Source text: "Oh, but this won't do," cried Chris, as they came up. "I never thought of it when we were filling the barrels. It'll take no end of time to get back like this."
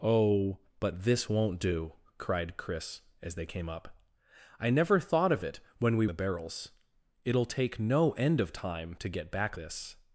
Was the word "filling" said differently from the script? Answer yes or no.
yes